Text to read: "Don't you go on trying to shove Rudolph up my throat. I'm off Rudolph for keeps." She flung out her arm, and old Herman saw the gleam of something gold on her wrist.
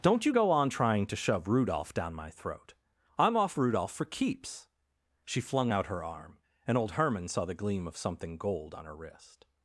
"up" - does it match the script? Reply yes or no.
no